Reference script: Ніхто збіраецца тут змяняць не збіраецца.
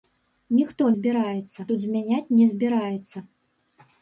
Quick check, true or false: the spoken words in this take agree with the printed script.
true